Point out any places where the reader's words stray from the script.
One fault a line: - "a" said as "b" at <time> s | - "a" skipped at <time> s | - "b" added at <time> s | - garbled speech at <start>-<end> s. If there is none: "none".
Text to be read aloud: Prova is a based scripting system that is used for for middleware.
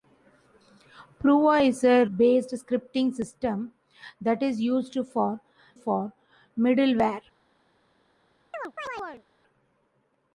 none